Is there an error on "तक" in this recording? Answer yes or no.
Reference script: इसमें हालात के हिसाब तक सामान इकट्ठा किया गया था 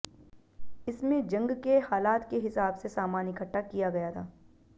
yes